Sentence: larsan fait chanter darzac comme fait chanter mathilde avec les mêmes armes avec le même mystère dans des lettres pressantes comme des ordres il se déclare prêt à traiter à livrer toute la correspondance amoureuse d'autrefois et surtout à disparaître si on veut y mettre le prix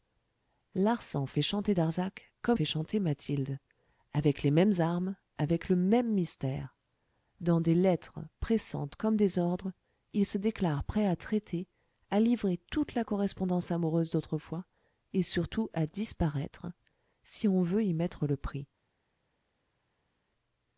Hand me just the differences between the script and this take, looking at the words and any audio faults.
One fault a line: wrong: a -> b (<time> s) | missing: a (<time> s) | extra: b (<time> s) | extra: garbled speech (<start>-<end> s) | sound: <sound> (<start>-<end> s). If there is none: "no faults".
no faults